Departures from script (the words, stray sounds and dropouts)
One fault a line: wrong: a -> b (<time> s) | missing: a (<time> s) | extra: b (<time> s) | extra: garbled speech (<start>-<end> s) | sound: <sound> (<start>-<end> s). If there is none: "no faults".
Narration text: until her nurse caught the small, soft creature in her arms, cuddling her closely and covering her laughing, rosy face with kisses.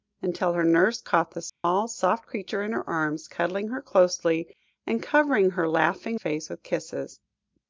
sound: dropout (1.5-1.6 s)
missing: rosy (6.2 s)